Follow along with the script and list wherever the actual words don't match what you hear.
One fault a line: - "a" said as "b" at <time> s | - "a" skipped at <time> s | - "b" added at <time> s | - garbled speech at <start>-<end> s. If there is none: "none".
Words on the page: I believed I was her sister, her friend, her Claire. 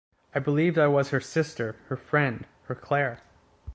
none